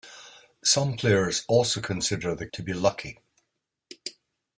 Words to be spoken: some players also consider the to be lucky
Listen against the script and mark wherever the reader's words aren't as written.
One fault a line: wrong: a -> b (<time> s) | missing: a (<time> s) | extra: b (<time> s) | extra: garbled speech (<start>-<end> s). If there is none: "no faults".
no faults